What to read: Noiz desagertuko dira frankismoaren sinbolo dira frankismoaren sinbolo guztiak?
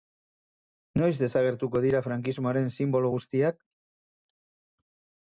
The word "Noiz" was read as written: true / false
true